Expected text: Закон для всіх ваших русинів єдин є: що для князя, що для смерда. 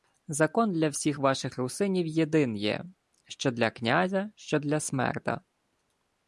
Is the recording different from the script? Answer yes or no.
no